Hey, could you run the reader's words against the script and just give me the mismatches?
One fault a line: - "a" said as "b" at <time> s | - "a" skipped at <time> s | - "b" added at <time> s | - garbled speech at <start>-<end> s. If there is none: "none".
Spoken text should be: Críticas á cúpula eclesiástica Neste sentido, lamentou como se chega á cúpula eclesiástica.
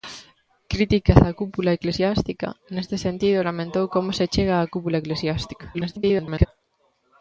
- garbled speech at 5.7-6.5 s